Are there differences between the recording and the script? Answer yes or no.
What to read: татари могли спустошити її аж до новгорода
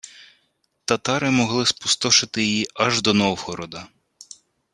no